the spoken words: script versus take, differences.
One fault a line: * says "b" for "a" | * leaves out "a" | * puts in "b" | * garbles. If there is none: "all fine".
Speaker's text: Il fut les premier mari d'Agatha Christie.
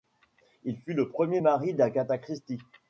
* says "le" for "les"